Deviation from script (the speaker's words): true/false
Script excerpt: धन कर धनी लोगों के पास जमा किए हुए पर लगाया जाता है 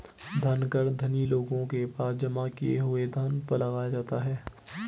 true